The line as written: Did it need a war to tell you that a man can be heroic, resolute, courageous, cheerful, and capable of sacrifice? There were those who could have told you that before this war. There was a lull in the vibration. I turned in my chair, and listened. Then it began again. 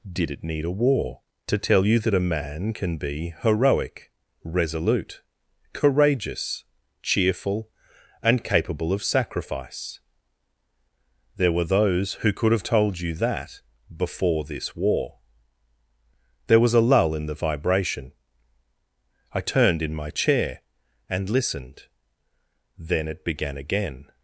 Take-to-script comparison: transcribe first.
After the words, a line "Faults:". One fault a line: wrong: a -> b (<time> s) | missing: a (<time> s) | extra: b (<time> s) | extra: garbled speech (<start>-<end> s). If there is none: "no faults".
Did it need a war to tell you that a man can be heroic, resolute, courageous, cheerful, and capable of sacrifice? There were those who could have told you that before this war. There was a lull in the vibration. I turned in my chair, and listened. Then it began again.
Faults:
no faults